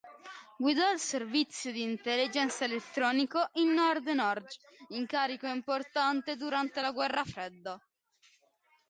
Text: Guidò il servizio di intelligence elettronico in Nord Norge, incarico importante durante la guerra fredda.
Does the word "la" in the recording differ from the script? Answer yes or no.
no